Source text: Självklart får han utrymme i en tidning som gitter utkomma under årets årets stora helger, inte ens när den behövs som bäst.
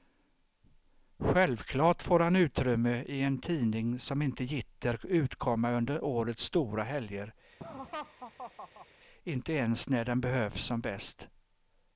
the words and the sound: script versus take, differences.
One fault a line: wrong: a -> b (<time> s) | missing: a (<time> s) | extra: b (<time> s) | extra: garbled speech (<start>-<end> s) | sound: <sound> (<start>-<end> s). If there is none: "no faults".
extra: inte (4.2 s)
missing: årets (6.4 s)
sound: laugh (7.6-8.9 s)